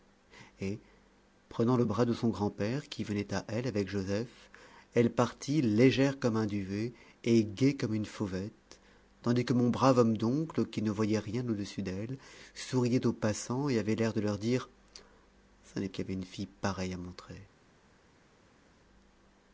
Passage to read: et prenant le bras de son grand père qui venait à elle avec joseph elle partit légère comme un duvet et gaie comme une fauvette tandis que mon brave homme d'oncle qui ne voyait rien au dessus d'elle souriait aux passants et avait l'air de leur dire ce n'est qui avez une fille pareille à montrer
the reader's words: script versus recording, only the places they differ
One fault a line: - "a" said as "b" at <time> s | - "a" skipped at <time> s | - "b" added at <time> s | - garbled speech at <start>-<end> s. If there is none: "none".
none